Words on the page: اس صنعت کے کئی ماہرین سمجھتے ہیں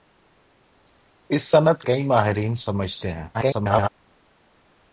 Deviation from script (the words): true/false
true